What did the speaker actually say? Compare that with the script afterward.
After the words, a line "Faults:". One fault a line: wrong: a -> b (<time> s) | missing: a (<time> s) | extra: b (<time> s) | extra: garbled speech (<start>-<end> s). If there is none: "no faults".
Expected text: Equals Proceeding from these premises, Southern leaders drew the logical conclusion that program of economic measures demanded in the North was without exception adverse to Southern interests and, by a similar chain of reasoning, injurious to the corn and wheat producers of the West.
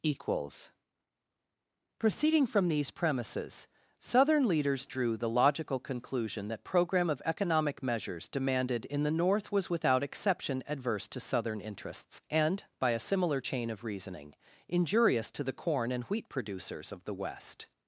Equals Proceeding from these premises, Southern leaders drew the logical conclusion that program of economic measures demanded in the North was without exception adverse to Southern interests and, by a similar chain of reasoning, injurious to the corn and wheat producers of the West.
Faults:
no faults